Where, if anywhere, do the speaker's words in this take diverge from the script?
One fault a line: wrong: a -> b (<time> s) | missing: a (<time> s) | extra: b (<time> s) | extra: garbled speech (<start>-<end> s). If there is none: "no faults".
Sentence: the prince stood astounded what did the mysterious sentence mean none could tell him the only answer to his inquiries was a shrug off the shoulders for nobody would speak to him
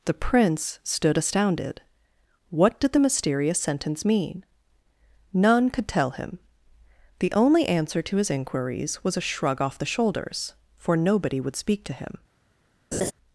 no faults